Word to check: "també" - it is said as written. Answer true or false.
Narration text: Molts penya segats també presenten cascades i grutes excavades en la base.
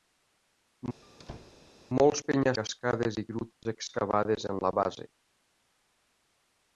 false